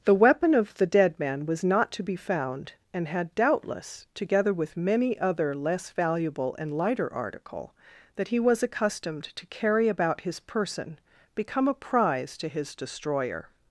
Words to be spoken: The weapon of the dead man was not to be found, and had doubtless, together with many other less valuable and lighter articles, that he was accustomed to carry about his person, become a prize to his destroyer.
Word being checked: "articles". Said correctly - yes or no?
no